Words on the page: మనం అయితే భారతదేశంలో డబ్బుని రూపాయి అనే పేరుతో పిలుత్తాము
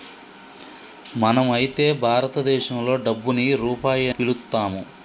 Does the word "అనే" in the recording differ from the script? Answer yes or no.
yes